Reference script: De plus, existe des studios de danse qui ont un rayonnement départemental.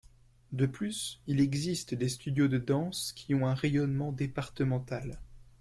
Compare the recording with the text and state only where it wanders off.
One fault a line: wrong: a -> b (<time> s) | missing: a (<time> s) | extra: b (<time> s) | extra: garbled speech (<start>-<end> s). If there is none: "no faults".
extra: il (1.3 s)